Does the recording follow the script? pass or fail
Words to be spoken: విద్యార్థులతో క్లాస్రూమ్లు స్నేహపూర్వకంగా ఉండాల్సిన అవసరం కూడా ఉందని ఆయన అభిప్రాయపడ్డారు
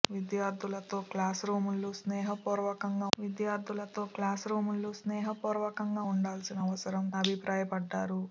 fail